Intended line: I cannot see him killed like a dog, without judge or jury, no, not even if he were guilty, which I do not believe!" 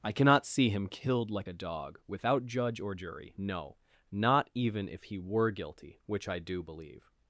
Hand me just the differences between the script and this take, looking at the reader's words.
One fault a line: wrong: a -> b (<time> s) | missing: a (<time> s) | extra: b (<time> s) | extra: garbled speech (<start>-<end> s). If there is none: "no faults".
missing: not (6.6 s)